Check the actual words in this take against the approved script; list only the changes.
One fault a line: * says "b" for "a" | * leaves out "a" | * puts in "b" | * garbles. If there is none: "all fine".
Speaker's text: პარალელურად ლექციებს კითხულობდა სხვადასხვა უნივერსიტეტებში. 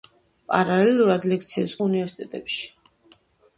* leaves out "კითხულობდა სხვადასხვა"